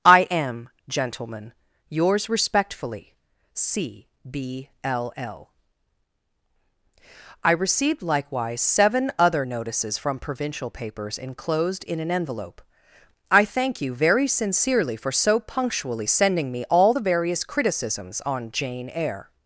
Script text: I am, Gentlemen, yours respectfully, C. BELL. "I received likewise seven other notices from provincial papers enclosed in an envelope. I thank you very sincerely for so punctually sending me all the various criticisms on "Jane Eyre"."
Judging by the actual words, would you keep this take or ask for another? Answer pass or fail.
fail